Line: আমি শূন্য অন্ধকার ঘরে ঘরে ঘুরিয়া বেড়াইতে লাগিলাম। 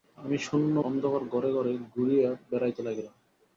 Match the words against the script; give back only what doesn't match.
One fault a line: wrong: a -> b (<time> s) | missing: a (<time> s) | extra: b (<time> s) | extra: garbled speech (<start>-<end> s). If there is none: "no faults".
no faults